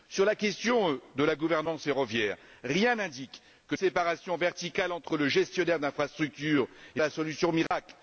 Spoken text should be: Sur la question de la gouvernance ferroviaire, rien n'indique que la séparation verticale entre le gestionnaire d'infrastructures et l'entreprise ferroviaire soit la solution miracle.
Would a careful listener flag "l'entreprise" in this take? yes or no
yes